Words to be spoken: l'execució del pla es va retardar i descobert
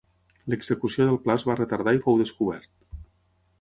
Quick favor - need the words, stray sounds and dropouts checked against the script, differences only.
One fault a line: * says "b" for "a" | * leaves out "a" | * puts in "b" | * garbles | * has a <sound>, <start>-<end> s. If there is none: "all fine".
* puts in "fou"